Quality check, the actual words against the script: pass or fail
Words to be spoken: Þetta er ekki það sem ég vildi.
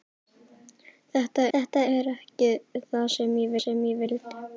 fail